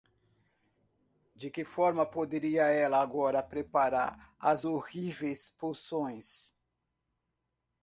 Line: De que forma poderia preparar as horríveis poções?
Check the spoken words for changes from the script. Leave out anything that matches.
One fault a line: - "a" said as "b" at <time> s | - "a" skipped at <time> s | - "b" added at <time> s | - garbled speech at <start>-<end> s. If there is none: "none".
- "ela agora" added at 2.6 s